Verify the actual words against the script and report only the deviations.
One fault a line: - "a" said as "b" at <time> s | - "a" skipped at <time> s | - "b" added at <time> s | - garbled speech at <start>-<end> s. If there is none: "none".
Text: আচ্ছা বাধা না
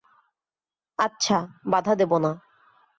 - "দেব" added at 1.9 s